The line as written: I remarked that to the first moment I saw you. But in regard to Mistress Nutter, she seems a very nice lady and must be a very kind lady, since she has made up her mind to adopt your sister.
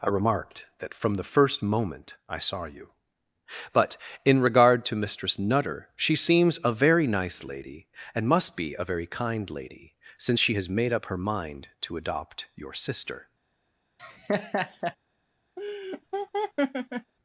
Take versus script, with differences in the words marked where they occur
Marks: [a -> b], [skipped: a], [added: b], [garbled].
I remarked that [to -> from] the first moment I saw you. But in regard to Mistress Nutter, she seems a very nice lady and must be a very kind lady, since she has made up her mind to adopt your sister.